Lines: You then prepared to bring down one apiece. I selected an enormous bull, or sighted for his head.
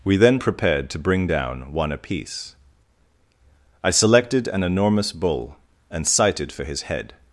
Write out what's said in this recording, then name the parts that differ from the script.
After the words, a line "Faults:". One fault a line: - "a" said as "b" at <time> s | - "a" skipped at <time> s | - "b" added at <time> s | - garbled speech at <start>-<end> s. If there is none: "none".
We then prepared to bring down one apiece. I selected an enormous bull, and sighted for his head.
Faults:
- "You" said as "We" at 0.0 s
- "or" said as "and" at 5.9 s